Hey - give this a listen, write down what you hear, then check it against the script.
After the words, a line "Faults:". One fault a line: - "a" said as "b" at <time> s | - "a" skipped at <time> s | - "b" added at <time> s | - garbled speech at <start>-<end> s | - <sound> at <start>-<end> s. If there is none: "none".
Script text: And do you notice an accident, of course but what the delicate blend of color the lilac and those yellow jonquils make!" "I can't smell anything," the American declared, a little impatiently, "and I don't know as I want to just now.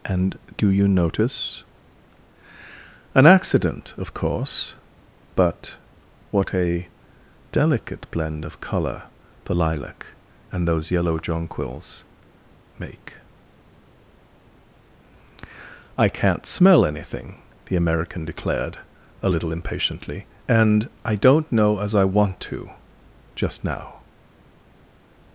And do you notice an accident, of course but what a delicate blend of color the lilac and those yellow jonquils make!" "I can't smell anything," the American declared, a little impatiently, "and I don't know as I want to just now.
Faults:
- "the" said as "a" at 6.5 s